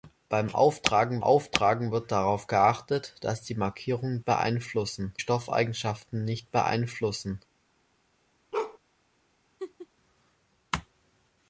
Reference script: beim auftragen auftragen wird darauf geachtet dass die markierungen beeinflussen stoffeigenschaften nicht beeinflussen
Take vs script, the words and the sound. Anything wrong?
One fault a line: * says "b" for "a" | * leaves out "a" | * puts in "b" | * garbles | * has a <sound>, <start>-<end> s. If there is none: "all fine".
* has a bark, 8.5-8.8 s
* has a laugh, 9.6-9.9 s